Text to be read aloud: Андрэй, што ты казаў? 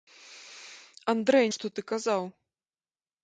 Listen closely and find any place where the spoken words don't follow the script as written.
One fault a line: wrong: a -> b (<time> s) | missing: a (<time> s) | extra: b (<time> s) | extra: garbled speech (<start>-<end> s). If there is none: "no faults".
no faults